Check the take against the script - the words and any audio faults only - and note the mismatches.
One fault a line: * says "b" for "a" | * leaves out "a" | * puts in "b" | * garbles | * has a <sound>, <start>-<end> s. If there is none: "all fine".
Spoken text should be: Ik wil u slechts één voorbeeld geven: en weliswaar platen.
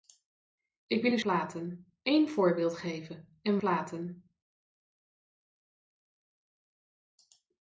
* says "platen" for "slechts"
* leaves out "weliswaar"